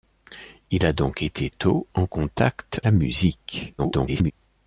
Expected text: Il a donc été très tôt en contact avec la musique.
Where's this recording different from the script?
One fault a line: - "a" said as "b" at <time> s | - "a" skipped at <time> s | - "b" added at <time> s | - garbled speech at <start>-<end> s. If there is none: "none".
- "très" skipped at 1.5 s
- "avec" skipped at 2.8 s
- garbled speech at 3.8-4.3 s